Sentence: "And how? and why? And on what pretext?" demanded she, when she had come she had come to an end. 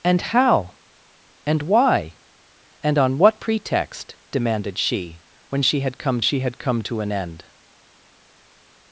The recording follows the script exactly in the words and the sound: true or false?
true